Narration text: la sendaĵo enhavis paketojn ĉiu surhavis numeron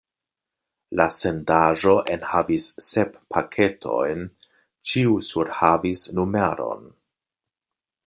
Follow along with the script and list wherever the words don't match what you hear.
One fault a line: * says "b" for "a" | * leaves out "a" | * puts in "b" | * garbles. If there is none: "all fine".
* puts in "sep"